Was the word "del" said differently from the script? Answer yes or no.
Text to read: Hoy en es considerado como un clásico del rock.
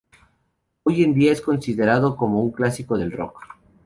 no